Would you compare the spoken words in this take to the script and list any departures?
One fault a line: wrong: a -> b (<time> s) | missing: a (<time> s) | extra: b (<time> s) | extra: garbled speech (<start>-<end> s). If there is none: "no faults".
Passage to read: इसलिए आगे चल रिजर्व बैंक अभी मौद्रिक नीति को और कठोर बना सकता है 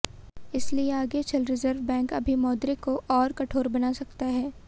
missing: नीति (2.8 s)